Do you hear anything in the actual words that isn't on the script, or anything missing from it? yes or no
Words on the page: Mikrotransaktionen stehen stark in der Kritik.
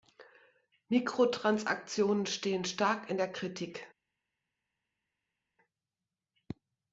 no